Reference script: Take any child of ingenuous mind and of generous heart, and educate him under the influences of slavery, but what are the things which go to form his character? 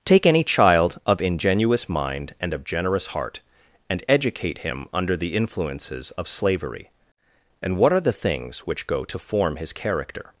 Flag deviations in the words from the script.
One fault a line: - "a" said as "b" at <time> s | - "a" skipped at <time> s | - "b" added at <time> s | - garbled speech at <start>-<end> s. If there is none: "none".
- "but" said as "and" at 7.6 s